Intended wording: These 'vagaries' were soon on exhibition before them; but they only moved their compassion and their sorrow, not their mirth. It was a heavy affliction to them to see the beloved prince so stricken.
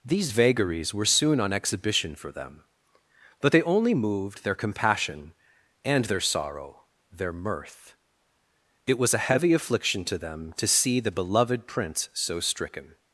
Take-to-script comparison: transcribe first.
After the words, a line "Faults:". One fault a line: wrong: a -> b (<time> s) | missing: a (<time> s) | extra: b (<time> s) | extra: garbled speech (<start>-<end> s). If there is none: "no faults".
These 'vagaries' were soon on exhibition for them; but they only moved their compassion and their sorrow, their mirth. It was a heavy affliction to them to see the beloved prince so stricken.
Faults:
wrong: before -> for (2.1 s)
missing: not (6.9 s)